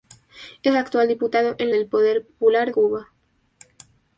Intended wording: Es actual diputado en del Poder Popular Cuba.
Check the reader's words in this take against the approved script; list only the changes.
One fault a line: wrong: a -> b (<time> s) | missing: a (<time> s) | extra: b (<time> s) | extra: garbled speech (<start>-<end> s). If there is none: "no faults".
no faults